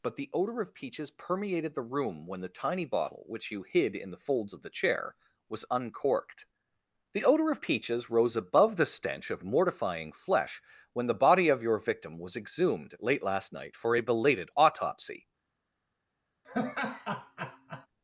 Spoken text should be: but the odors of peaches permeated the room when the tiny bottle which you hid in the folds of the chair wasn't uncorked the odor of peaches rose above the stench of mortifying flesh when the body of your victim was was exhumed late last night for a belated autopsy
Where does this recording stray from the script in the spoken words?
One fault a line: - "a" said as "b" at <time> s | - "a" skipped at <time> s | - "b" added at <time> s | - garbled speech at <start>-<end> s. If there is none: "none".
- "odors" said as "odor" at 0.3 s
- "wasn't" said as "was" at 5.5 s
- "was" skipped at 12.4 s